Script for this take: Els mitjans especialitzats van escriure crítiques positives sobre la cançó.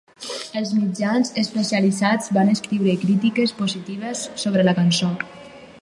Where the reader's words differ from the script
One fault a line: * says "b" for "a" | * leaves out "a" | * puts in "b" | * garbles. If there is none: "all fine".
all fine